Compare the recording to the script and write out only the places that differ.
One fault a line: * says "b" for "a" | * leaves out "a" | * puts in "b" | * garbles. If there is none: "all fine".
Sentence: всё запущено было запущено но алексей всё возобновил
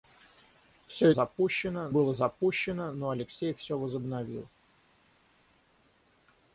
all fine